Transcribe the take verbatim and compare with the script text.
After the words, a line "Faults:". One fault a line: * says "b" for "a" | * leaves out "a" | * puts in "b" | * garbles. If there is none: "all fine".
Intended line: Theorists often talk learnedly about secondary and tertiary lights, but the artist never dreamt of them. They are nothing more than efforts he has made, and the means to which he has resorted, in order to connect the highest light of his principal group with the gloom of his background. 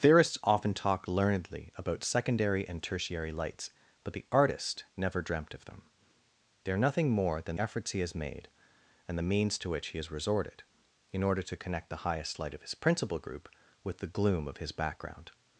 Theorists often talk learnedly about secondary and tertiary lights, but the artist never dreamt of them. They are nothing more than efforts he has made, and the means to which he has resorted, in order to connect the highest light of his principal group with the gloom of his background.
Faults:
all fine